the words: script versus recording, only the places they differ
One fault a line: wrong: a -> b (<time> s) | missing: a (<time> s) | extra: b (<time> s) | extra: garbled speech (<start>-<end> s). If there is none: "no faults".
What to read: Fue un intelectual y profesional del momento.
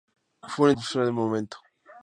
missing: intelectual (0.7 s)